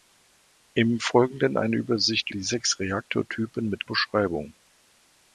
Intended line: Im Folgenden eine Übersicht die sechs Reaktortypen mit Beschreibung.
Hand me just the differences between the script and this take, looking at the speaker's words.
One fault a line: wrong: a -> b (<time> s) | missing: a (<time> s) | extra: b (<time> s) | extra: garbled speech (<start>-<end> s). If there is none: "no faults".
no faults